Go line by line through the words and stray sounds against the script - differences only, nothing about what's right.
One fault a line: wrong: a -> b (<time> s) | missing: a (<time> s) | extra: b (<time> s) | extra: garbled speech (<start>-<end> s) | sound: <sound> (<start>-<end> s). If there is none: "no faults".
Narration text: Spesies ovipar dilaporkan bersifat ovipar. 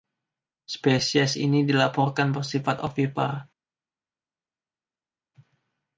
wrong: ovipar -> ini (1.4 s)